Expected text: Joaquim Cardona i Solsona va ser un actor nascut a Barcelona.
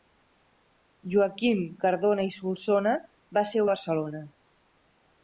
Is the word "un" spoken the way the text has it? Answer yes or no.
no